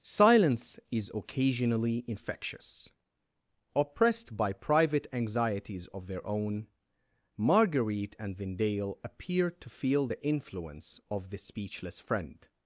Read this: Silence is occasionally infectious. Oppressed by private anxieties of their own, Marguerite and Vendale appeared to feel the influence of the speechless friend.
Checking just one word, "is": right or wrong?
right